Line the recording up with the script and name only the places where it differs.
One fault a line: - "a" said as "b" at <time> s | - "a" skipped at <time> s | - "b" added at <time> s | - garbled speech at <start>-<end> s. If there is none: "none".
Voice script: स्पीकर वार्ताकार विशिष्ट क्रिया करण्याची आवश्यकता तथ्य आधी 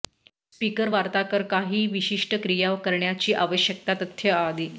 - "काही" added at 1.5 s